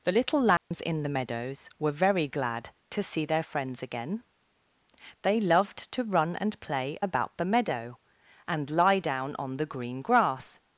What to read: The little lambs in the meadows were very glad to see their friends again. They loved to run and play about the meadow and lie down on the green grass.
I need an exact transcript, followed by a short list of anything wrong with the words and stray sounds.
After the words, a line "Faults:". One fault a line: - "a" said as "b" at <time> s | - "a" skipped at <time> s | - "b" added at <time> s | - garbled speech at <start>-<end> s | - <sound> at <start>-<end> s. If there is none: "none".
The little lambs in the meadows were very glad to see their friends again. They loved to run and play about the meadow and lie down on the green grass.
Faults:
- dropout at 0.6-0.7 s